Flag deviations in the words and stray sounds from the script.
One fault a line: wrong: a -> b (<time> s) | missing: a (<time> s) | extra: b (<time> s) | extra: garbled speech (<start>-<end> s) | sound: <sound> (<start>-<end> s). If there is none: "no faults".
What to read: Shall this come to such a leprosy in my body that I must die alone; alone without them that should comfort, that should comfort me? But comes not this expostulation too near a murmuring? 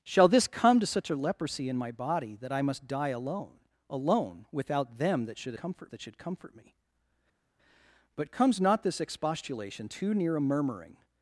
no faults